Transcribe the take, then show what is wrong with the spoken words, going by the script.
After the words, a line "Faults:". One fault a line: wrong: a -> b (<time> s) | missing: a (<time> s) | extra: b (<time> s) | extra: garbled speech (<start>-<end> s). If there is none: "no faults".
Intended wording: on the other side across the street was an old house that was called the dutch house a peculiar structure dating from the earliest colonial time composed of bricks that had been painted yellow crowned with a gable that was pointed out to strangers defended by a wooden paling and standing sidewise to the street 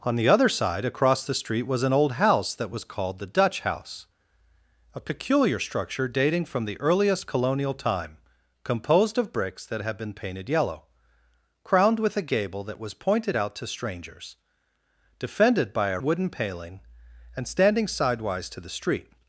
on the other side across the street was an old house that was called the dutch house a peculiar structure dating from the earliest colonial time composed of bricks that had been painted yellow crowned with a gable that was pointed out to strangers defended by a wooden paling and standing sidewise to the street
Faults:
no faults